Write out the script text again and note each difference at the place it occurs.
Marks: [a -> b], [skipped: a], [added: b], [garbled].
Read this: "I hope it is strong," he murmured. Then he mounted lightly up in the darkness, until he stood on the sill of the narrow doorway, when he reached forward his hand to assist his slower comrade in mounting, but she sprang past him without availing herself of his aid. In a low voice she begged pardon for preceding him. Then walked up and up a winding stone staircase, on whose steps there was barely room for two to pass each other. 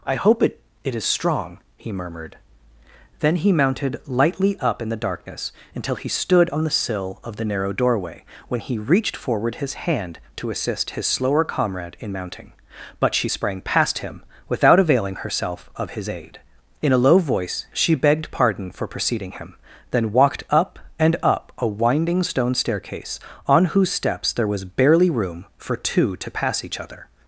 "I hope it [added: it] is strong," he murmured. Then he mounted lightly up in the darkness, until he stood on the sill of the narrow doorway, when he reached forward his hand to assist his slower comrade in mounting, but she sprang past him without availing herself of his aid. In a low voice she begged pardon for preceding him. Then walked up and up a winding stone staircase, on whose steps there was barely room for two to pass each other.